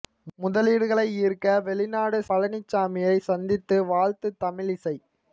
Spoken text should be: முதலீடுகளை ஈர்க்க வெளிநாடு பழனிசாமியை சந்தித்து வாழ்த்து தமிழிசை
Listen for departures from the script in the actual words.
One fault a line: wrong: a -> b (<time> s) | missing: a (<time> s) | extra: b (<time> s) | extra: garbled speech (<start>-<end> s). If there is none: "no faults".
no faults